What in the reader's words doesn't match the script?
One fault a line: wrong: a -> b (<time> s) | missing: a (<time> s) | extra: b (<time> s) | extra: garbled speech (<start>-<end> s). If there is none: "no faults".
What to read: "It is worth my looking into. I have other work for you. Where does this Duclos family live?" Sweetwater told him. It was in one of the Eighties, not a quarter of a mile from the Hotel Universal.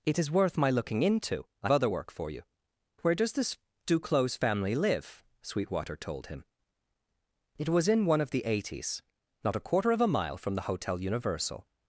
missing: have (1.7 s)